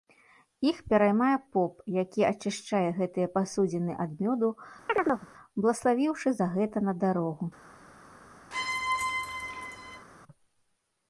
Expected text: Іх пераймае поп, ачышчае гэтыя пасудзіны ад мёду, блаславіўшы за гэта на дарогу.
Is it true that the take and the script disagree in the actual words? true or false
true